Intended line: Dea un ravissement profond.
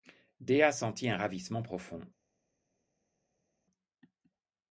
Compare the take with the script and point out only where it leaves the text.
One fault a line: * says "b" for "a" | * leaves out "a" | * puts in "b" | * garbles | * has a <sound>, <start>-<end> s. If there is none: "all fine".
* puts in "sentit"